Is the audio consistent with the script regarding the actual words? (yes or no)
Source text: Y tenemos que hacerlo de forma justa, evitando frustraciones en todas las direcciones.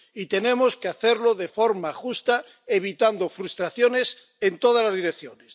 yes